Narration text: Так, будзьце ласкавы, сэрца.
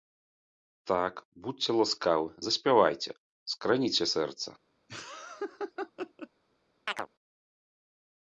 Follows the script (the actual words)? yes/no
no